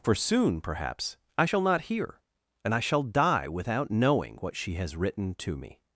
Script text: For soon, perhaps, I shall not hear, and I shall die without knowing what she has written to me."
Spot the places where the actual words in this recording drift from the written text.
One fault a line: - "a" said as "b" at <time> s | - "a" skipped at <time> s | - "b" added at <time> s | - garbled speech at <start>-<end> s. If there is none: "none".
none